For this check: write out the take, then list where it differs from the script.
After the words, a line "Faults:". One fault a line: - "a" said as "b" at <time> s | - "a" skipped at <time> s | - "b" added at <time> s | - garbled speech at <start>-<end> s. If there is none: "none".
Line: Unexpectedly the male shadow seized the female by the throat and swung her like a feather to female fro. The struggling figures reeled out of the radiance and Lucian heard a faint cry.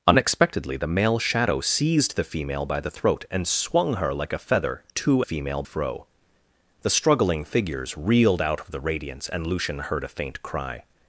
Unexpectedly the male shadow seized the female by the throat and swung her like a feather to female fro. The struggling figures reeled out of the radiance and Lucian heard a faint cry.
Faults:
none